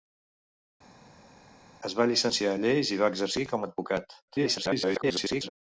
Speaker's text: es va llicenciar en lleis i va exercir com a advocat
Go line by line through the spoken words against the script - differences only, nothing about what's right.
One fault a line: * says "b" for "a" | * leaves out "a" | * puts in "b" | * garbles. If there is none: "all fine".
* garbles